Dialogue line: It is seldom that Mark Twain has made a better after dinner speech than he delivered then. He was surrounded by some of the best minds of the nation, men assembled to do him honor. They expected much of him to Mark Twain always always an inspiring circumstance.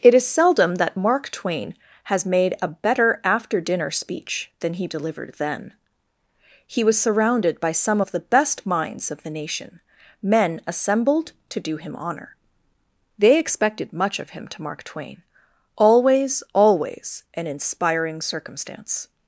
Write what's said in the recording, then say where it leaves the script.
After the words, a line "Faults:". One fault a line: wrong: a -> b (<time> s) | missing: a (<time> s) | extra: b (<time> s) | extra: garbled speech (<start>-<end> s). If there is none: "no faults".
It is seldom that Mark Twain has made a better after dinner speech than he delivered then. He was surrounded by some of the best minds of the nation, men assembled to do him honor. They expected much of him to Mark Twain always always an inspiring circumstance.
Faults:
no faults